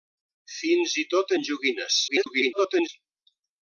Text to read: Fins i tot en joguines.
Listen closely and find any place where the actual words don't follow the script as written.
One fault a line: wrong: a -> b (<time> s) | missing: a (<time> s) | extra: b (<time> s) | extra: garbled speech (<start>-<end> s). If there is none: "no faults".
extra: garbled speech (2.1-2.9 s)